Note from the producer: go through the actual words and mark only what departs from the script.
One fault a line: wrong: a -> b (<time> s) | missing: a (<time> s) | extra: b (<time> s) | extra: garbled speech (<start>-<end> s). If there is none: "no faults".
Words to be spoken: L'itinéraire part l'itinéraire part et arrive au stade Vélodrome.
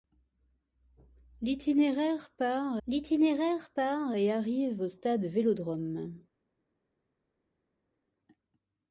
no faults